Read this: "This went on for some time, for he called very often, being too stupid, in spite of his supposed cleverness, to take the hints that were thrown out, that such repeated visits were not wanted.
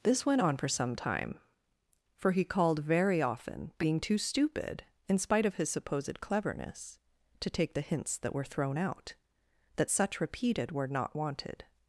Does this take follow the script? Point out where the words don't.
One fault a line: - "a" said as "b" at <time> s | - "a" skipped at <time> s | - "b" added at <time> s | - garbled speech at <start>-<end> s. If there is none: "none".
- "visits" skipped at 10.7 s